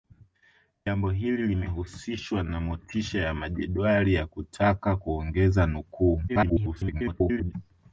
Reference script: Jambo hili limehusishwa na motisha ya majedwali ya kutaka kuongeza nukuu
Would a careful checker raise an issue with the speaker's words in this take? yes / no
yes